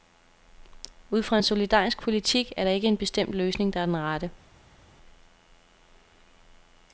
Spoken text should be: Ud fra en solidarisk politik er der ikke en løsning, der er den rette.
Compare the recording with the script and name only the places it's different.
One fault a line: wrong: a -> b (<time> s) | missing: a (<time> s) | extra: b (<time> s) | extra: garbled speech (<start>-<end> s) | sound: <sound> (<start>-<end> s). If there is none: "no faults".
extra: bestemt (3.0 s)